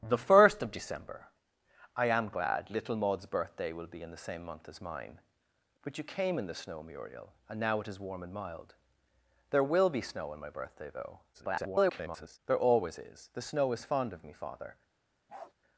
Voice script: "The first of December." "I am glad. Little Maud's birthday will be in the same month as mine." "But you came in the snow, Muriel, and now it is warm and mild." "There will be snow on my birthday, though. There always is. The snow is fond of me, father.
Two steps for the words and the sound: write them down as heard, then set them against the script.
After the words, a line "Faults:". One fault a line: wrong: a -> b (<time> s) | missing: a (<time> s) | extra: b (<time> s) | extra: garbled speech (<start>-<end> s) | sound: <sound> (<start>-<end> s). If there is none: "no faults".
"The first of December." "I am glad. Little Maud's birthday will be in the same month as mine." "But you came in the snow, Muriel, and now it is warm and mild." "There will be snow on my birthday, though. [garbled] There always is. The snow is fond of me, father.
Faults:
extra: garbled speech (11.3-12.4 s)
sound: bark (15.3-15.5 s)